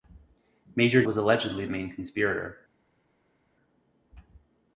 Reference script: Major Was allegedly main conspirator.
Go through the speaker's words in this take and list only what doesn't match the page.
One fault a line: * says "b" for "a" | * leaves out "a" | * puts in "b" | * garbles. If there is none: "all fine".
all fine